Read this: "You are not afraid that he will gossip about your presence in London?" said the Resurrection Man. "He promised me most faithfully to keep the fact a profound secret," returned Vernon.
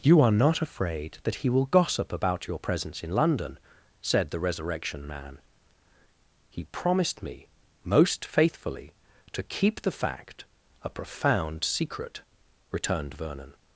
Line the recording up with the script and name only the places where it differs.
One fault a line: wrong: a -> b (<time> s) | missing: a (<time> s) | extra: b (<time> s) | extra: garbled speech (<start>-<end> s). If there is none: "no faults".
no faults